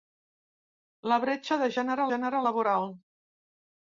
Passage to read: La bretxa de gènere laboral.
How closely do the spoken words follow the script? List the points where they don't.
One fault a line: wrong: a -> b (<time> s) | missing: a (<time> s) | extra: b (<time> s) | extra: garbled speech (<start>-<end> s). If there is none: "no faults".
extra: gènere (2.1 s)